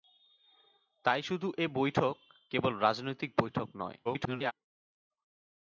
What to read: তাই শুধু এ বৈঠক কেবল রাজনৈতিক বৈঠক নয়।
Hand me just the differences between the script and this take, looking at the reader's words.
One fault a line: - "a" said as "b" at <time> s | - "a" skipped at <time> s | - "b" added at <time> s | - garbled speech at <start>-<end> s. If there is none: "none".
- garbled speech at 4.0-4.5 s